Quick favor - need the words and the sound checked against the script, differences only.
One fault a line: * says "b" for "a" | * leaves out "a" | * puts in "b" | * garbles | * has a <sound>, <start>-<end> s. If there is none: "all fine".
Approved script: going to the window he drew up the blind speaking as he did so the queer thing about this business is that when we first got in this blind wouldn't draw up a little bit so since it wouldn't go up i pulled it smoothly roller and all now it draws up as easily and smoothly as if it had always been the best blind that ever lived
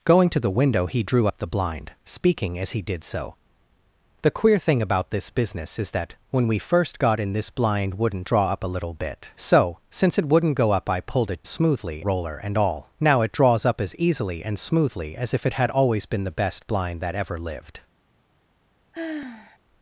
* has a sigh, 18.9-19.6 s